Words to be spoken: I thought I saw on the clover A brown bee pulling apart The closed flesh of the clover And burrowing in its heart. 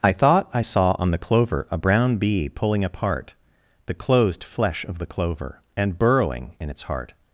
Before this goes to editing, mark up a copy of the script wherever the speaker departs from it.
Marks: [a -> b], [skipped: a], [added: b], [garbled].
I thought I saw on the clover A brown bee pulling apart The closed flesh of the clover And burrowing in its heart.